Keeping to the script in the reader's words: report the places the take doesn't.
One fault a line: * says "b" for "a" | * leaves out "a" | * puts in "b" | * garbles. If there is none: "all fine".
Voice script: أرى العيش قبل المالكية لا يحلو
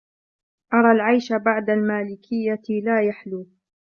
* says "بعد" for "قبل"